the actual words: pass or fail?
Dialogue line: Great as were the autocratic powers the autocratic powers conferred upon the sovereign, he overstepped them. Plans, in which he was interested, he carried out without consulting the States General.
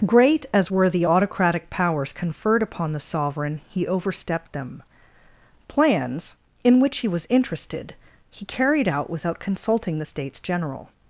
fail